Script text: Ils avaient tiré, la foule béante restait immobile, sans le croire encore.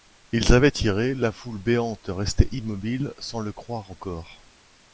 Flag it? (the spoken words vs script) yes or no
no